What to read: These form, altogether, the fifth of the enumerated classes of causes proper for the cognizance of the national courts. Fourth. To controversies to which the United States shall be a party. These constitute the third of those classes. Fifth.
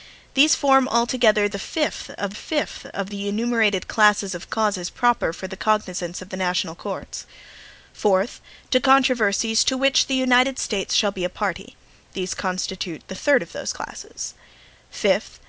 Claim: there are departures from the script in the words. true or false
true